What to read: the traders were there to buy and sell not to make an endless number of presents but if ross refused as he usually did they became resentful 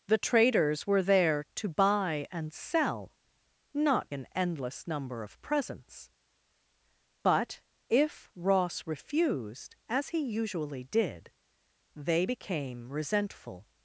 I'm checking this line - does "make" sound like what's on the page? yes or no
no